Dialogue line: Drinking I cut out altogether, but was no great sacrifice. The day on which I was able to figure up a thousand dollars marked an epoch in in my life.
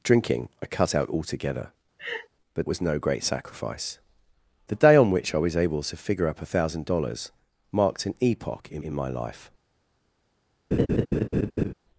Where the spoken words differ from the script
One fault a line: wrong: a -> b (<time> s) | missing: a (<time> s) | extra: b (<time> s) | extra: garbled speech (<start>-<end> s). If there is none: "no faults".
no faults